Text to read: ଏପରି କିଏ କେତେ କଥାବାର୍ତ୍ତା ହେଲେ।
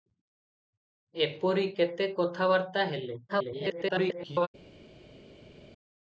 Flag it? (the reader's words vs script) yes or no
yes